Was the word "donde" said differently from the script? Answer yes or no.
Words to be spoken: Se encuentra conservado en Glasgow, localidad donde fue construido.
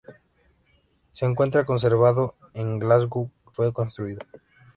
yes